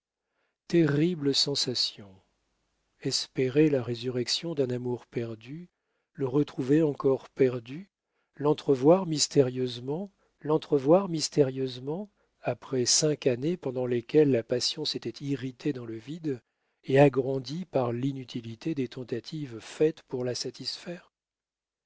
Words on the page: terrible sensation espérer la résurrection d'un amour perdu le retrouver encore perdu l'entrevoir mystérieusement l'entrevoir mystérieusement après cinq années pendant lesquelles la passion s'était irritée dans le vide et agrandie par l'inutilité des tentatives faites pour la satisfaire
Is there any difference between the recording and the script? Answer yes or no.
no